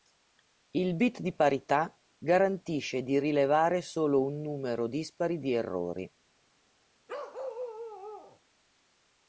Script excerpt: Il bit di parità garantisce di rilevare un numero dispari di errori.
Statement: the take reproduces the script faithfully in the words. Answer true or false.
false